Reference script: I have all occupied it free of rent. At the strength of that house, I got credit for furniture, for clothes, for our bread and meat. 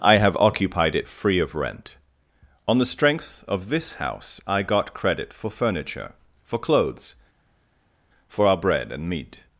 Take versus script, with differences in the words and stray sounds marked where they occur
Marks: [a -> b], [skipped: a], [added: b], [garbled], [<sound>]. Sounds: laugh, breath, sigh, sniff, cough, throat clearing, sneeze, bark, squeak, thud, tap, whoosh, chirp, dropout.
I have [skipped: all] occupied it free of rent. [At -> On] the strength of [that -> this] house, I got credit for furniture, for clothes, for our bread and meat.